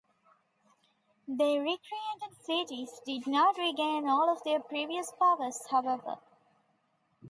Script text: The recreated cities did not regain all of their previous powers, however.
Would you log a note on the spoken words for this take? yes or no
no